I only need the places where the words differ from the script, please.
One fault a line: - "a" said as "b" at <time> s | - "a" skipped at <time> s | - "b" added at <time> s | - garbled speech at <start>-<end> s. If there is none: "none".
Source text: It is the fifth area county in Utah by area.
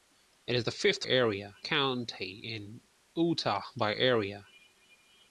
none